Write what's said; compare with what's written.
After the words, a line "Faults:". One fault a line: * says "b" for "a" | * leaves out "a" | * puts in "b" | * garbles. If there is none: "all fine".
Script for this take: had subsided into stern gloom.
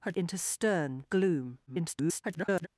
had into stern gloom. [garbled]
Faults:
* leaves out "subsided"
* garbles